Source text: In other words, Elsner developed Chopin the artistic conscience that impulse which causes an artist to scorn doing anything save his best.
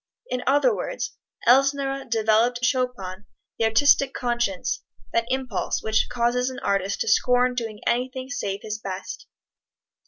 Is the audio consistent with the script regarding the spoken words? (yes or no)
yes